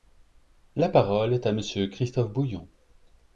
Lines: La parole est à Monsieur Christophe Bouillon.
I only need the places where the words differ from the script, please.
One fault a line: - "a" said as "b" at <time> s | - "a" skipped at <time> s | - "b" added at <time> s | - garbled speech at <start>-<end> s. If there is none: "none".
none